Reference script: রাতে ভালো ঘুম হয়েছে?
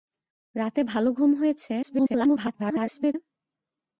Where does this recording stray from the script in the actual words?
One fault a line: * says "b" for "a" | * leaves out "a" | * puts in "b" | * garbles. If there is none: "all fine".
* garbles